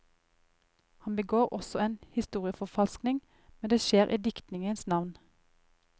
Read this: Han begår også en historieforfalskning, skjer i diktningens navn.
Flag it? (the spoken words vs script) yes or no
yes